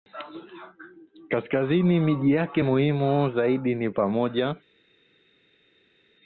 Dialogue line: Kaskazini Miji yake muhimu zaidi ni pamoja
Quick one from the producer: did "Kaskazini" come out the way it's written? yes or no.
yes